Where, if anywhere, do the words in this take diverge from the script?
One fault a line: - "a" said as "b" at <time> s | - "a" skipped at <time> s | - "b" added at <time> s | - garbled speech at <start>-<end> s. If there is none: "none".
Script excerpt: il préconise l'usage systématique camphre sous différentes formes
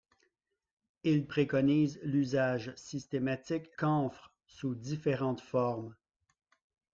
none